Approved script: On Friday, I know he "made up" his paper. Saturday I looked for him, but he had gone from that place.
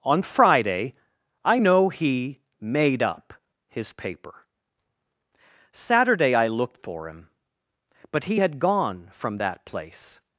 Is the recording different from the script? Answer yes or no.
no